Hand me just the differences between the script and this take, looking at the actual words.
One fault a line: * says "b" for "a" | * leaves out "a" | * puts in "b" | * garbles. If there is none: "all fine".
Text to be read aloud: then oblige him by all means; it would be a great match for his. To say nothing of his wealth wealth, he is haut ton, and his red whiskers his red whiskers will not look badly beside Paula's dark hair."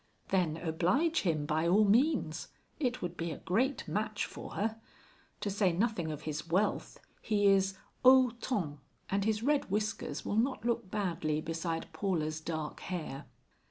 * says "her" for "his"
* leaves out "wealth"
* leaves out "his red whiskers"